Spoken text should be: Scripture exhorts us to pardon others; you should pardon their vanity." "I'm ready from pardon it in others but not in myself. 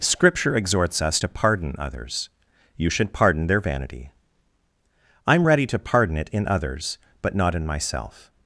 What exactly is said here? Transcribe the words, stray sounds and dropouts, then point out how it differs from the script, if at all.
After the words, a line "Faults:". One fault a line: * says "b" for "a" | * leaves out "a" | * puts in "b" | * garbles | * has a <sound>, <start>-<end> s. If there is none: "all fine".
Scripture exhorts us to pardon others; you should pardon their vanity." "I'm ready to pardon it in others but not in myself.
Faults:
* says "to" for "from"